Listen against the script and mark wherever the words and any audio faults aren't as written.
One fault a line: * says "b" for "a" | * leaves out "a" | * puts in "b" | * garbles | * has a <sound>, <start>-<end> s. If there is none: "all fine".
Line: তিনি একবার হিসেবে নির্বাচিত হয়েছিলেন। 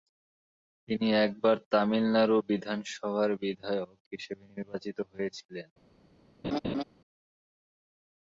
* puts in "তামিলনাড়ু বিধানসভার বিধায়ক"
* has a laugh, 6.4-6.8 s